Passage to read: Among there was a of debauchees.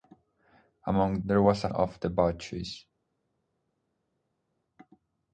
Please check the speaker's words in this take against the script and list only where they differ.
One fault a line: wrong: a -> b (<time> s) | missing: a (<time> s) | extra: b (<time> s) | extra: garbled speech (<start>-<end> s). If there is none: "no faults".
no faults